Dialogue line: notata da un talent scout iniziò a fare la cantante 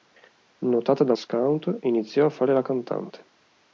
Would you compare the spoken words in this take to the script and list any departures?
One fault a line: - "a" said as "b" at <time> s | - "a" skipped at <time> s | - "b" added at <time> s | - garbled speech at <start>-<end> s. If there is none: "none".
- "un talent" skipped at 1.1 s